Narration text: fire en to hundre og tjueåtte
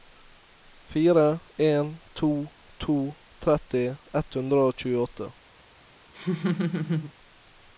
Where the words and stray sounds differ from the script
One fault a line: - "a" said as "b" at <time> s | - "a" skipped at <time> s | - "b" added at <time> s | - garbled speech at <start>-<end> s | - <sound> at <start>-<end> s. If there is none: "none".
- "to tretti ett" added at 2.8 s
- laugh at 6.1-7.1 s